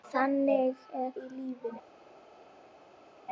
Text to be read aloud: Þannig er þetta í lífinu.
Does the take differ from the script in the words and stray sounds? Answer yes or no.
yes